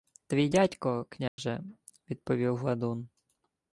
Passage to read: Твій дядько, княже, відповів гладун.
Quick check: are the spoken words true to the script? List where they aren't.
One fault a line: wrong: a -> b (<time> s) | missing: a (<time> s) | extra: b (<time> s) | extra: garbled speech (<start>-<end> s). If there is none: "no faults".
no faults